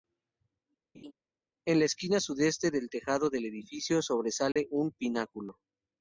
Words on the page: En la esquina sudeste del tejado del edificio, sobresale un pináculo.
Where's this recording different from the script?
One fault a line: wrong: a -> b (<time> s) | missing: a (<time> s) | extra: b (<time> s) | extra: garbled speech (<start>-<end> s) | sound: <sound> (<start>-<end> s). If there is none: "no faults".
sound: laugh (0.9-1.1 s)
sound: dropout (4.5-4.6 s)